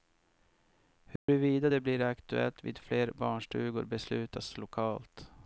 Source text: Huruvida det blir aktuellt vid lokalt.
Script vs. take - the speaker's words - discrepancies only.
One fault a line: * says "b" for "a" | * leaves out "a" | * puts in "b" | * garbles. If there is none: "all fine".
* puts in "fler barnstugor beslutas"